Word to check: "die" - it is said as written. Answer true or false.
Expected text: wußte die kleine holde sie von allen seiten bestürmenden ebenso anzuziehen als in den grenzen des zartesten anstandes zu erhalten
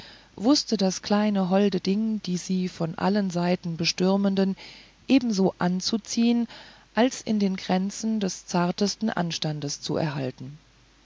false